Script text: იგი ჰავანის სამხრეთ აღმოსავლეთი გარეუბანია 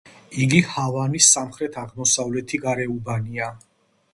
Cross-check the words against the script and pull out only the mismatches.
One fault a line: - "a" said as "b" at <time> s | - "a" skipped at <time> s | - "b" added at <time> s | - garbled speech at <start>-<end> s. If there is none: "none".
none